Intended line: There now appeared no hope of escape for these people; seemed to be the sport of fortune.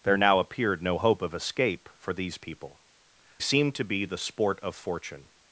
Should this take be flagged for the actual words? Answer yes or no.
no